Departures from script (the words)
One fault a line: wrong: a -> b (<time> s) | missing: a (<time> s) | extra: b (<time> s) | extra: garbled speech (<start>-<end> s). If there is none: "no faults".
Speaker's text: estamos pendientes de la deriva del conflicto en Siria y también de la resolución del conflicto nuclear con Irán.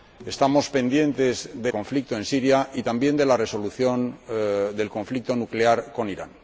missing: la deriva del (1.7 s)